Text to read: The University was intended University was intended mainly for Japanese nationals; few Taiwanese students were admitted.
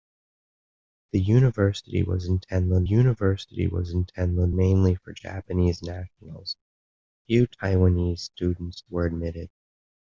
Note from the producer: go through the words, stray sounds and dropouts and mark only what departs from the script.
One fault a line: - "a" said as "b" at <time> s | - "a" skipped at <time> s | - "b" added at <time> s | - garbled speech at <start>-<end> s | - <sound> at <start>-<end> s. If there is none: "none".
none